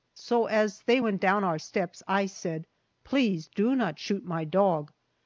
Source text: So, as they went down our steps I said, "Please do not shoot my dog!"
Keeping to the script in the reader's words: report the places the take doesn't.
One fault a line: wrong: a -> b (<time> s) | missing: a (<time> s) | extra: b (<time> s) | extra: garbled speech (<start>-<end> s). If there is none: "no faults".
no faults